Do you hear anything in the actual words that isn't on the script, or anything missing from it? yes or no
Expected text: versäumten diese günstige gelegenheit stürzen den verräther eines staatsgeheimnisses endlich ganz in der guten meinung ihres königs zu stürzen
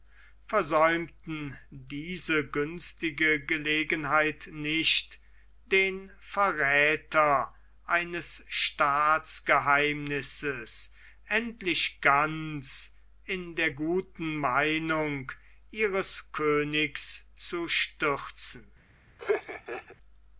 yes